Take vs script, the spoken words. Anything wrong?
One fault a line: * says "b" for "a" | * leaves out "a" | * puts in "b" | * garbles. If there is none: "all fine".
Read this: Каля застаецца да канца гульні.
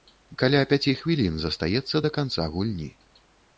* puts in "пяці хвілін"